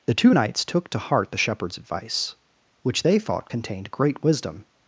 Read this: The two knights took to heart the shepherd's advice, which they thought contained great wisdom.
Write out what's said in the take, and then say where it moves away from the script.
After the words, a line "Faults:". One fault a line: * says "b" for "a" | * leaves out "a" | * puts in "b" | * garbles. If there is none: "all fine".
The two knights took to heart the shepherd's advice, which they thought contained great wisdom.
Faults:
all fine